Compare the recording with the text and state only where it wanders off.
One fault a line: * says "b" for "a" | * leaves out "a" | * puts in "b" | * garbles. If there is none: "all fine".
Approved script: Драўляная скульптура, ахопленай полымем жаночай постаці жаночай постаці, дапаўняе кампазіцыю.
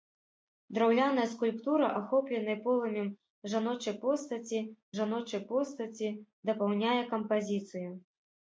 all fine